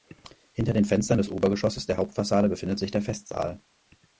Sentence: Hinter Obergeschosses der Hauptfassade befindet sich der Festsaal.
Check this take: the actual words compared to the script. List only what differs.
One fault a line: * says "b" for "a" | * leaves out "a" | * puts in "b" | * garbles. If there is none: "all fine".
* puts in "den Fenstern des"